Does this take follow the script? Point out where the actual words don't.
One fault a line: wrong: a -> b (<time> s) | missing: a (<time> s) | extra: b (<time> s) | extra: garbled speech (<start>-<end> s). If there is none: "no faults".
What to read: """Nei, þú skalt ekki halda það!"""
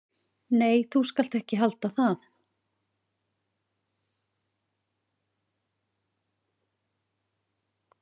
no faults